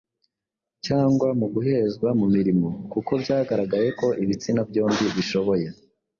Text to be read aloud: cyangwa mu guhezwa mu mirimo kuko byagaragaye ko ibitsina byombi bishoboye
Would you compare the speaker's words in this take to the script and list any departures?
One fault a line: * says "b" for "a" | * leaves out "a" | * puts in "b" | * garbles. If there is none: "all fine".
all fine